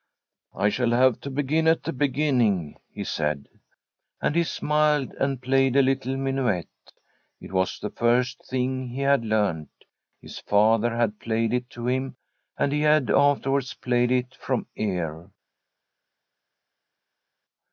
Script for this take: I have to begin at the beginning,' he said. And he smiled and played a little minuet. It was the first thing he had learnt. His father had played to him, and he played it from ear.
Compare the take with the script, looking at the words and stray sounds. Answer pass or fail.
fail